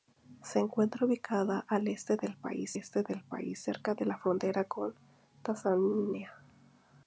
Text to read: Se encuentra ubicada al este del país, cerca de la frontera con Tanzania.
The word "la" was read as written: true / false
true